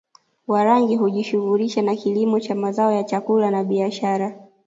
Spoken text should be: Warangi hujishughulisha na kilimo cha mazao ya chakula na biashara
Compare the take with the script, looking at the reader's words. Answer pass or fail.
pass